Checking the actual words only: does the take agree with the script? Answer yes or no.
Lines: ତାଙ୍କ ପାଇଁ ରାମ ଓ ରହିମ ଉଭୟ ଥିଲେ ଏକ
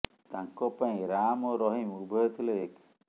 yes